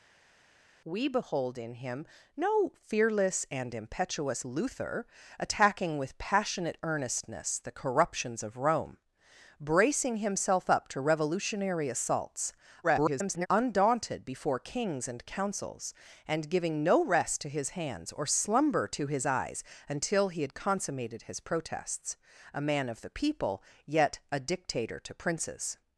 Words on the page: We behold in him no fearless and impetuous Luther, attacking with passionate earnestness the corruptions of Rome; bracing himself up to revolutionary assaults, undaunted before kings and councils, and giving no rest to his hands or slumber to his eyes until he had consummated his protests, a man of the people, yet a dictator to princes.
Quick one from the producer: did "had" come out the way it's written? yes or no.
yes